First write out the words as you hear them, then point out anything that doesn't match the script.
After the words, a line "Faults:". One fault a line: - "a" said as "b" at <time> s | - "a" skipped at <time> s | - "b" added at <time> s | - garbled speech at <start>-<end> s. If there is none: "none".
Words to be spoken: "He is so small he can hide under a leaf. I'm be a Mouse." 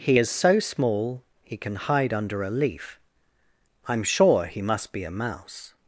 "He is so small he can hide under a leaf. I'm sure he must be a Mouse."
Faults:
- "sure he must" added at 4.0 s